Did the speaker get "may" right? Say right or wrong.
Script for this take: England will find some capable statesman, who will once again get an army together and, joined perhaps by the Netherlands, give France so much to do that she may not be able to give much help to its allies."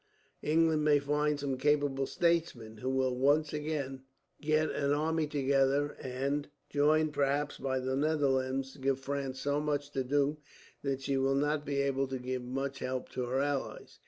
wrong